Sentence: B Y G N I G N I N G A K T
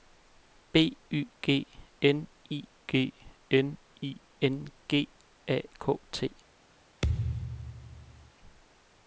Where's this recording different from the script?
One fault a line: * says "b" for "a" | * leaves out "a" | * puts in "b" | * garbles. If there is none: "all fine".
all fine